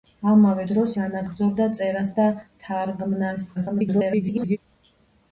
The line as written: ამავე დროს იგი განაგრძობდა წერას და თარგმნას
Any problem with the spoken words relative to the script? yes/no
yes